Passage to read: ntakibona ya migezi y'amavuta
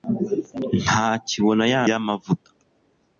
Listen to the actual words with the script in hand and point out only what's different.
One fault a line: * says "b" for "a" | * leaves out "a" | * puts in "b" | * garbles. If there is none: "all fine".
* leaves out "migezi"